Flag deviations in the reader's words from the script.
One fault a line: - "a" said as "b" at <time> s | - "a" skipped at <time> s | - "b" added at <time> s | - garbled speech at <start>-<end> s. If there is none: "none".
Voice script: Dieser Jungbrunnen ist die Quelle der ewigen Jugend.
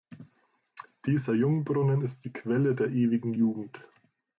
none